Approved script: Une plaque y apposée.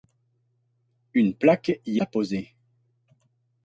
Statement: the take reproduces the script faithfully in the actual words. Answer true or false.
true